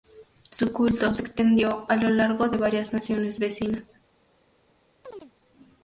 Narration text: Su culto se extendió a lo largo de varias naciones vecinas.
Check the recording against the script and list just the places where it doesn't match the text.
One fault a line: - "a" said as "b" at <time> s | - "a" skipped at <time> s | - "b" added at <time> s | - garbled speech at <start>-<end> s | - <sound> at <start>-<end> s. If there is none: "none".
- chirp at 5.0-5.3 s